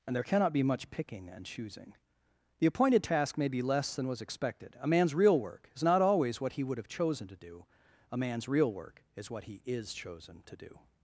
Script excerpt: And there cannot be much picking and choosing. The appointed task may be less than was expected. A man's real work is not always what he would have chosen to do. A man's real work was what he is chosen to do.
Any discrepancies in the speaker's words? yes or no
yes